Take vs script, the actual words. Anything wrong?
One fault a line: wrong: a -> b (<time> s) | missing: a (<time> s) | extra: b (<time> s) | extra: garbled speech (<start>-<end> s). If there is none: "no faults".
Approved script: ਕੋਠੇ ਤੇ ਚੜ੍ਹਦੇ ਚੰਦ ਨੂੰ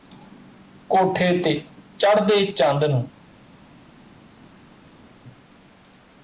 no faults